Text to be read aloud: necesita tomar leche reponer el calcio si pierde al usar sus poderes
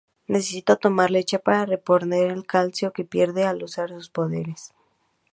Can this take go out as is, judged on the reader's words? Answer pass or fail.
fail